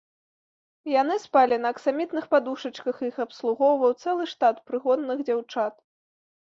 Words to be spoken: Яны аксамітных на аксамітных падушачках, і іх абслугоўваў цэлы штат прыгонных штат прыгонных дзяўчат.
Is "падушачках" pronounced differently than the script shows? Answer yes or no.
no